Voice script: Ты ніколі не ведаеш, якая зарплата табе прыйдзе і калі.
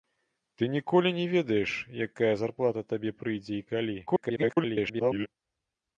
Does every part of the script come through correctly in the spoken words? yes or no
no